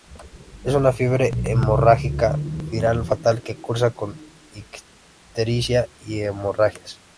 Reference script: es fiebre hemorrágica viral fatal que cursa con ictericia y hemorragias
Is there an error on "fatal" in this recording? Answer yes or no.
no